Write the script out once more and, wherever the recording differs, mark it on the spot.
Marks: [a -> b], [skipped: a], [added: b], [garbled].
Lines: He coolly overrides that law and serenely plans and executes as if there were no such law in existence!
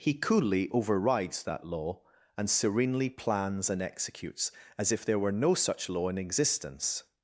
He coolly overrides that law and serenely plans and executes as if there were no such law in existence!